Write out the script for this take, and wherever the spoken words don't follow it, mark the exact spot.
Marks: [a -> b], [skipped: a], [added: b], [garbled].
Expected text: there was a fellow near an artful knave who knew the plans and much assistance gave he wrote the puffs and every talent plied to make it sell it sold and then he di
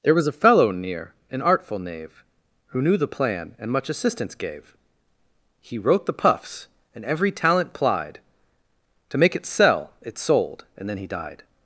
there was a fellow near an artful knave who knew the [plans -> plan] and much assistance gave he wrote the puffs and every talent plied to make it sell it sold and then he [di -> died]